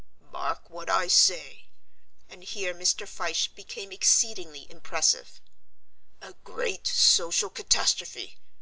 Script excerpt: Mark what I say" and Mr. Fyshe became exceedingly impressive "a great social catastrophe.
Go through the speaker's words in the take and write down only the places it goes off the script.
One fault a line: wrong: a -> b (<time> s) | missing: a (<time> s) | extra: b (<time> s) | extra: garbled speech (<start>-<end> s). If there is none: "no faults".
extra: here (2.4 s)